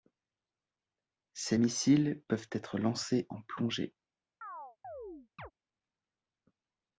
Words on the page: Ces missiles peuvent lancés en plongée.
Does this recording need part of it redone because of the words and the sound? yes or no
yes